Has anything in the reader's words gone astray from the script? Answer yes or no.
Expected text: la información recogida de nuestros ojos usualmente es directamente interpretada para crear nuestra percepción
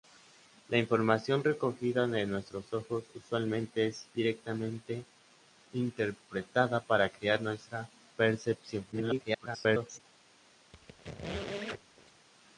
yes